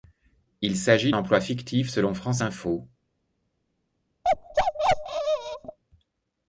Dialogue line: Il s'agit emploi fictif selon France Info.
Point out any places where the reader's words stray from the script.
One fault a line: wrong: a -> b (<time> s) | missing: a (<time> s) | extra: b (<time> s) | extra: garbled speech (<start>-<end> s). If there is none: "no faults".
no faults